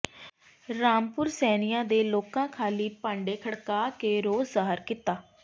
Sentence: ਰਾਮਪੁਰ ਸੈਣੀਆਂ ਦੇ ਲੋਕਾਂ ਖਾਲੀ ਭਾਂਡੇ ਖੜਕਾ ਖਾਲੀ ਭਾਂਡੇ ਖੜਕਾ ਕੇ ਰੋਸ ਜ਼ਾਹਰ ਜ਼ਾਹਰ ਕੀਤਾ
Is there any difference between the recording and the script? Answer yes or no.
yes